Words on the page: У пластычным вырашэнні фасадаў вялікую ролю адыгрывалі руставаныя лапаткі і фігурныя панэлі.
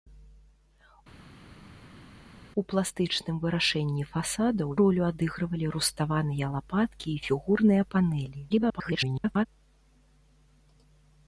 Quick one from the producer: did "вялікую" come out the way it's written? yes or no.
no